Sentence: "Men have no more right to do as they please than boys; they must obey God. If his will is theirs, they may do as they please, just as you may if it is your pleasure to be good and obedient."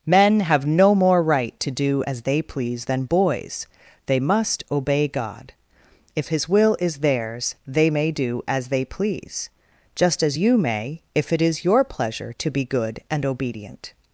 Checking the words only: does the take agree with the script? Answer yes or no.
yes